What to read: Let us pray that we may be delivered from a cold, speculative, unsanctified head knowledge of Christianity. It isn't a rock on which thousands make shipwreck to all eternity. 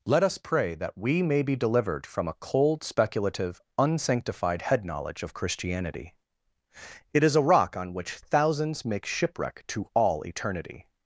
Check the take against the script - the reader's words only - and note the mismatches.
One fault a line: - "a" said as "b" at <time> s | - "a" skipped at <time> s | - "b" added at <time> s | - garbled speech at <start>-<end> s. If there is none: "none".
- "isn't" said as "is" at 7.2 s